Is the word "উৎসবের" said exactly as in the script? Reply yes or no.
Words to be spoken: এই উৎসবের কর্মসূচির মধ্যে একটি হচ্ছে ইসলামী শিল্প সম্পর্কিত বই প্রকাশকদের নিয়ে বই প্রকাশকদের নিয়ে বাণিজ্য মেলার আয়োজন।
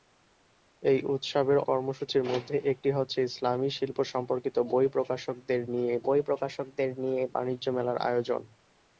yes